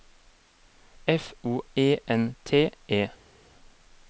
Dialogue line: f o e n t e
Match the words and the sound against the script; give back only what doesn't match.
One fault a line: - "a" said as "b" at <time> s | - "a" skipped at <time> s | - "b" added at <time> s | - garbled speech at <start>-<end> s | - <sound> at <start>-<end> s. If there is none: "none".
none